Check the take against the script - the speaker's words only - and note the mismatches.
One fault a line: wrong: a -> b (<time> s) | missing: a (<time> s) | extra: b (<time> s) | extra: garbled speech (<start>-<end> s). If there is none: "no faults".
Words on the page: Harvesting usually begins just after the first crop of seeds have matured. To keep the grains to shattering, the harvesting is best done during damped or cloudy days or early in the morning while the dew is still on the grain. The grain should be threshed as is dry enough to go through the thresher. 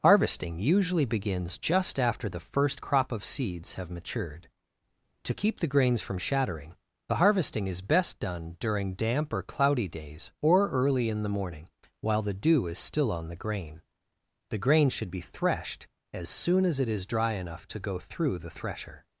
wrong: to -> from (6.0 s)
wrong: damped -> damp (8.9 s)
extra: soon as it (16.3 s)